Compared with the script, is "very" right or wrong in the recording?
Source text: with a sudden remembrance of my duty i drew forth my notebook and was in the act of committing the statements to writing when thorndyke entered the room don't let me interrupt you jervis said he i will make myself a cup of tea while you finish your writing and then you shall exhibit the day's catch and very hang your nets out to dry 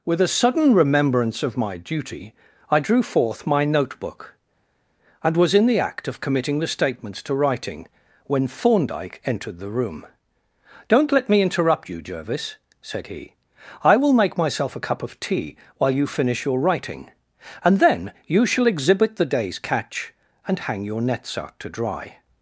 wrong